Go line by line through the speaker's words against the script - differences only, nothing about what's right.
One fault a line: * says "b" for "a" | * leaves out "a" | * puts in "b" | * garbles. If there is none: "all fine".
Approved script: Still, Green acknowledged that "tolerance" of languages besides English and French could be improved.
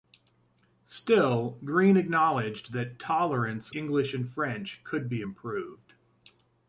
* leaves out "of languages besides"